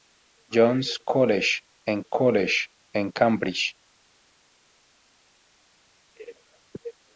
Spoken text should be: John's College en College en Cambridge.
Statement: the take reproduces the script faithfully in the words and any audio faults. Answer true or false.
true